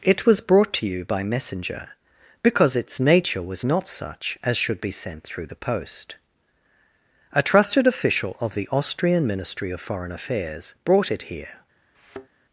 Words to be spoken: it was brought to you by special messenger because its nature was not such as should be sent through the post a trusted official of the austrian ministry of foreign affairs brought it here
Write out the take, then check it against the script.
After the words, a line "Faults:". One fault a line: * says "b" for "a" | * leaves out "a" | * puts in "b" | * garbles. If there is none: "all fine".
it was brought to you by messenger because its nature was not such as should be sent through the post a trusted official of the austrian ministry of foreign affairs brought it here
Faults:
* leaves out "special"